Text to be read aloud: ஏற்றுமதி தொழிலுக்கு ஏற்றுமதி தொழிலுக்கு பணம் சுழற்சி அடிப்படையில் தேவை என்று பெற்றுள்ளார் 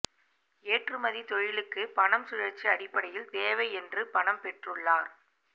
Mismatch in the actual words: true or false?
true